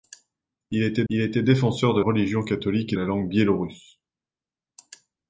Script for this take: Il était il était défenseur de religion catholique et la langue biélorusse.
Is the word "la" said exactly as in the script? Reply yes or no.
yes